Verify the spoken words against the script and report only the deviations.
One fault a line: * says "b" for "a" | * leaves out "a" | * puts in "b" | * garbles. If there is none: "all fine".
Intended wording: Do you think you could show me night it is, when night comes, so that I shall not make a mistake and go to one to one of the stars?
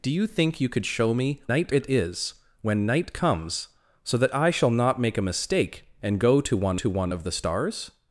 all fine